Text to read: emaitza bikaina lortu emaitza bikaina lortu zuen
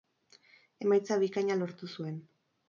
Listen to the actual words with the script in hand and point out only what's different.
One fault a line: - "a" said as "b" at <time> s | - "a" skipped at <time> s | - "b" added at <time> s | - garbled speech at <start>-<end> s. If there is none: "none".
- "emaitza bikaina lortu" skipped at 1.9 s